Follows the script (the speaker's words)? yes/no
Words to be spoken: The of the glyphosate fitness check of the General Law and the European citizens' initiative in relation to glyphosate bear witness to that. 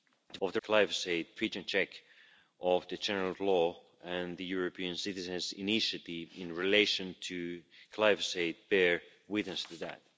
yes